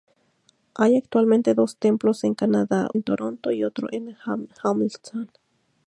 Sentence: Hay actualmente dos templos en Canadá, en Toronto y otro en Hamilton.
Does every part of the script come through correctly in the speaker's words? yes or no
yes